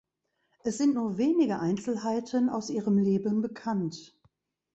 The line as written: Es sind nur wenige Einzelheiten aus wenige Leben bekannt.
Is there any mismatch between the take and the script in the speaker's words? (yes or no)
yes